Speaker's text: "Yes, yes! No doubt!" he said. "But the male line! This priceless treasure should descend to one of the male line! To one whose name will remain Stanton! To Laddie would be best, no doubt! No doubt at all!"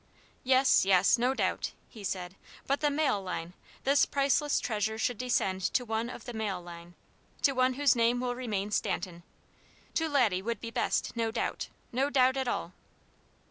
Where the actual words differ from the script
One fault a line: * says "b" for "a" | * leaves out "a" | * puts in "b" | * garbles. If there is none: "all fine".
all fine